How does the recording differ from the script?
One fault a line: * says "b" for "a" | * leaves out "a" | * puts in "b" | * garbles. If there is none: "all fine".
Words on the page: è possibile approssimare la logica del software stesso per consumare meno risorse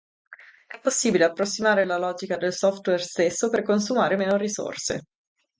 all fine